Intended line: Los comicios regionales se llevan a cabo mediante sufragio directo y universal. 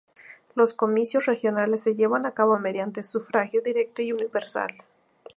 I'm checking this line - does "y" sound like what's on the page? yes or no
yes